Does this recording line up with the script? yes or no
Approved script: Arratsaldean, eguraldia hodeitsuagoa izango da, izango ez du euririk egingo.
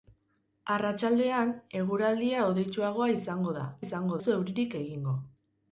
yes